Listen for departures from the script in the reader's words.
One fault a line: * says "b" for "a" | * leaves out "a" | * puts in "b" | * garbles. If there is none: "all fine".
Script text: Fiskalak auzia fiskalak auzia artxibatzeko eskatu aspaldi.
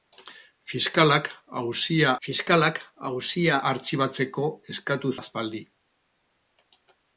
all fine